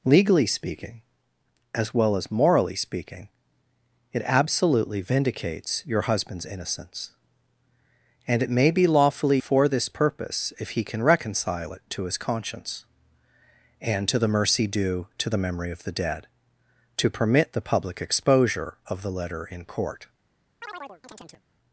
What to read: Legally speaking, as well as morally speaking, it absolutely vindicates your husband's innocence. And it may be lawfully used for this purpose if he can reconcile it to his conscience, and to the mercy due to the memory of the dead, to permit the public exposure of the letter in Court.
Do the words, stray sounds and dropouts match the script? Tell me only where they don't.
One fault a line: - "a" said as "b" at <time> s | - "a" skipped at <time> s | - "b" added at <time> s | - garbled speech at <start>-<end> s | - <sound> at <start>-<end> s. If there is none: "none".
- "used" skipped at 9.4 s
- chirp at 20.6-21.4 s